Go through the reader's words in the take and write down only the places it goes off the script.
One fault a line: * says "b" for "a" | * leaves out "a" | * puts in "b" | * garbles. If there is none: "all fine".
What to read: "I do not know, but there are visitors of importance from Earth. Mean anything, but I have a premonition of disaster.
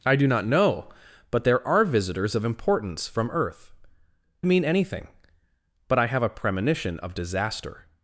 all fine